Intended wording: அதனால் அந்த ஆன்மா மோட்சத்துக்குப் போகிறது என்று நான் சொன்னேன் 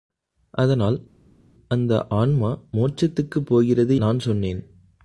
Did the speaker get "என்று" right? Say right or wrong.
wrong